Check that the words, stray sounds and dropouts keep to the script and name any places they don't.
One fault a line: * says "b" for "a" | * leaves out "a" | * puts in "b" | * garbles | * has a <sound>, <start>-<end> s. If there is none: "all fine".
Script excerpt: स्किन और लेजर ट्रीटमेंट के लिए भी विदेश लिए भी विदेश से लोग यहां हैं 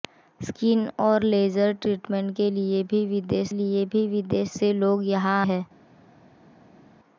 all fine